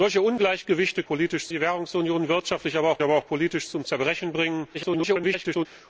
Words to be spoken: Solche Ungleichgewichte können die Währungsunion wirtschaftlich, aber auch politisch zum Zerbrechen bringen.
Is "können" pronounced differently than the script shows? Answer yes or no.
yes